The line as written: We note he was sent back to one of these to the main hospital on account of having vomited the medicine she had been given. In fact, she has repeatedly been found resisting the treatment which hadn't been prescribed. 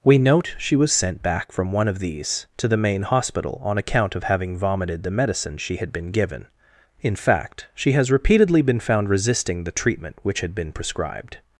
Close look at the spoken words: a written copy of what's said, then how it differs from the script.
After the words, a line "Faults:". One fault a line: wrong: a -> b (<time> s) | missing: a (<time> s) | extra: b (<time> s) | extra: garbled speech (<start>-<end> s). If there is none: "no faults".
We note she was sent back from one of these to the main hospital on account of having vomited the medicine she had been given. In fact, she has repeatedly been found resisting the treatment which had been prescribed.
Faults:
wrong: he -> she (0.6 s)
wrong: to -> from (1.5 s)
wrong: hadn't -> had (10.4 s)